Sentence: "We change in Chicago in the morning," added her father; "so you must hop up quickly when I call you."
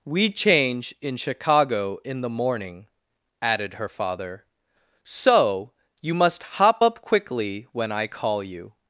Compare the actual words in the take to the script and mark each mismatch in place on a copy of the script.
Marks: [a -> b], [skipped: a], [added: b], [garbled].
"We change in Chicago in the morning," added her father; "so you must hop up quickly when I call you."